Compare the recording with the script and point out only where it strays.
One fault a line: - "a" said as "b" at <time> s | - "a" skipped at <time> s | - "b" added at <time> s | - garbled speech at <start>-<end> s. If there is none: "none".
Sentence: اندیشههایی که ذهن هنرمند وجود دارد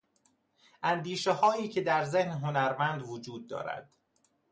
- "در" added at 1.8 s